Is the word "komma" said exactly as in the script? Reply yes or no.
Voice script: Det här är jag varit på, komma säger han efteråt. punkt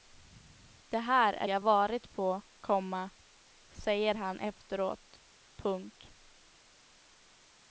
yes